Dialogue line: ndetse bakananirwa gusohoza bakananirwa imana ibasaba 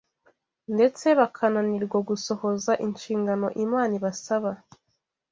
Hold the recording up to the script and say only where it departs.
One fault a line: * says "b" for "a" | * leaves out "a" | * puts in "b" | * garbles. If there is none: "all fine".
* says "inshingano" for "bakananirwa"